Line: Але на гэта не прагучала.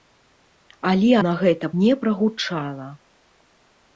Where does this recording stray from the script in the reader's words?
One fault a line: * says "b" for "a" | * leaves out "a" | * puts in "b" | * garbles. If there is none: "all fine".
all fine